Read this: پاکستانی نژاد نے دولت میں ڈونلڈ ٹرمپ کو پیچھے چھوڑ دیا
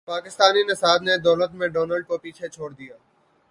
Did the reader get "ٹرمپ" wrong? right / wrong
wrong